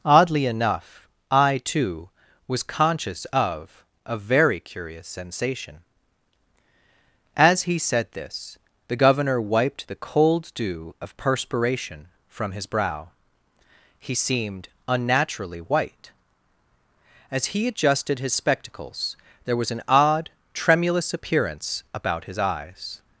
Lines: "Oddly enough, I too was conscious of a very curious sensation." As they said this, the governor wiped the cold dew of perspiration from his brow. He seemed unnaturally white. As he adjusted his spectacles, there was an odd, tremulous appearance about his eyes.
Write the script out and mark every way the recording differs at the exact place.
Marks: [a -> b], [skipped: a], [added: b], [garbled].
"Oddly enough, I too was conscious of a very curious sensation." As [they -> he] said this, the governor wiped the cold dew of perspiration from his brow. He seemed unnaturally white. As he adjusted his spectacles, there was an odd, tremulous appearance about his eyes.